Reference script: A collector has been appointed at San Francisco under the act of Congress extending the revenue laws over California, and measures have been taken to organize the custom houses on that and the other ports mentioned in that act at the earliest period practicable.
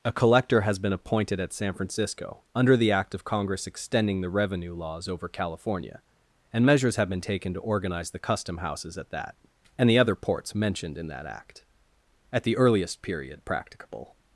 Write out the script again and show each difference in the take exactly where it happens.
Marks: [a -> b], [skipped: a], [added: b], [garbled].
A collector has been appointed at San Francisco under the act of Congress extending the revenue laws over California, and measures have been taken to organize the custom houses [on -> at] that and the other ports mentioned in that act at the earliest period practicable.